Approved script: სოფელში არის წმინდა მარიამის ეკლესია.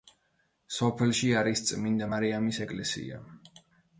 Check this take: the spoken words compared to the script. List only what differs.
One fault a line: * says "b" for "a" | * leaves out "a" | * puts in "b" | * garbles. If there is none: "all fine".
all fine